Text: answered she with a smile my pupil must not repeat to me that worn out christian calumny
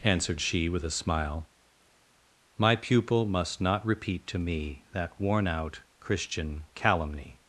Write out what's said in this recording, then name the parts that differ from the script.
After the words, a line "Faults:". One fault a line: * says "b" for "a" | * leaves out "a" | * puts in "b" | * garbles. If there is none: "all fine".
answered she with a smile my pupil must not repeat to me that worn out christian calumny
Faults:
all fine